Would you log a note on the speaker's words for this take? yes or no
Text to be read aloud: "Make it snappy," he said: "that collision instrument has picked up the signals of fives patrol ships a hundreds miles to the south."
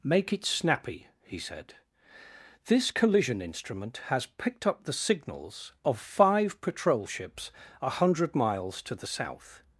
yes